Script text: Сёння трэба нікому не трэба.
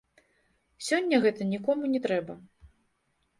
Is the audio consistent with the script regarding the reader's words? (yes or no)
no